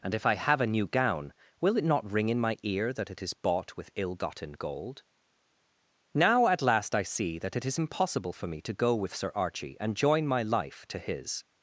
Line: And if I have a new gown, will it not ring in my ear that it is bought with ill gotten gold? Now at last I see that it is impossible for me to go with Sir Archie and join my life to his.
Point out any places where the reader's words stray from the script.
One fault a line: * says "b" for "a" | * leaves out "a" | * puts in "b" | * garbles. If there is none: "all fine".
all fine